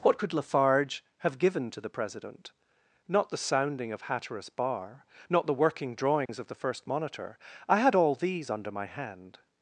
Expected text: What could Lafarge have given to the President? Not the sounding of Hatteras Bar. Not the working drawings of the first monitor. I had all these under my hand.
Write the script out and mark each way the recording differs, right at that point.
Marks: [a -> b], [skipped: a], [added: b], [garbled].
What could Lafarge have given to the President? Not the sounding of Hatteras Bar. Not the working drawings of the first monitor. I had all these under my hand.